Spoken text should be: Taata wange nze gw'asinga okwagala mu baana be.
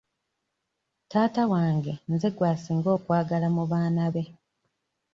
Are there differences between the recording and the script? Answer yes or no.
no